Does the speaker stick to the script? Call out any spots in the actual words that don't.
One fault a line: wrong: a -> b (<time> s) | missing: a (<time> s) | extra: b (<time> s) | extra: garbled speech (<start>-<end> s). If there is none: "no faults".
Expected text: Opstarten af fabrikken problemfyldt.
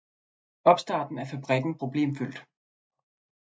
no faults